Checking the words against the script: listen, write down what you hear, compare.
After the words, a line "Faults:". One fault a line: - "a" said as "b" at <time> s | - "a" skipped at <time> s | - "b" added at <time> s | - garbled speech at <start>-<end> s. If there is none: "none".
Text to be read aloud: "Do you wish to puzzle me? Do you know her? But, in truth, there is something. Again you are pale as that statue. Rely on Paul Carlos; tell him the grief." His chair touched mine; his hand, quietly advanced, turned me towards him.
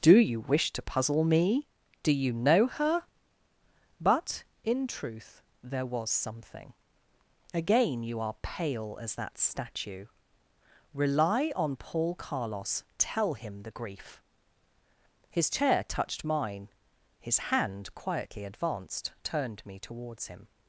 "Do you wish to puzzle me? Do you know her? But, in truth, there was something. Again you are pale as that statue. Rely on Paul Carlos; tell him the grief." His chair touched mine; his hand, quietly advanced, turned me towards him.
Faults:
- "is" said as "was" at 5.8 s